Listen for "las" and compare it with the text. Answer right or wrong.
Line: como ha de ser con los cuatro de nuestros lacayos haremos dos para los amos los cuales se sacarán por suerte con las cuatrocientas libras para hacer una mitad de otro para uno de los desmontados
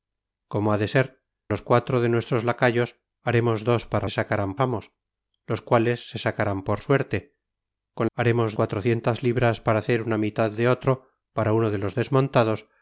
wrong